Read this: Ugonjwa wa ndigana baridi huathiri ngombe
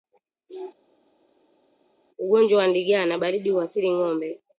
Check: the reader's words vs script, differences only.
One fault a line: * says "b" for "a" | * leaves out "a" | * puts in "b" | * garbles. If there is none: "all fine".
all fine